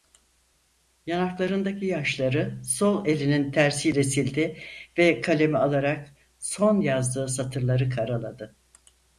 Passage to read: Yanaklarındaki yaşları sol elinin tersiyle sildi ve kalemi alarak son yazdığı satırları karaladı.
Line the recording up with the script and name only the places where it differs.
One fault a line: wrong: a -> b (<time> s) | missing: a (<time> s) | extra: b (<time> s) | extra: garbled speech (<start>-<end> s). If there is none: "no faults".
no faults